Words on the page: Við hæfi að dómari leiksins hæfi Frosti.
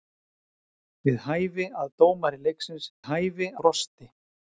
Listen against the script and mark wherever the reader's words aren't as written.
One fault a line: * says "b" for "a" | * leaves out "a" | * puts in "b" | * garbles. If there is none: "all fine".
all fine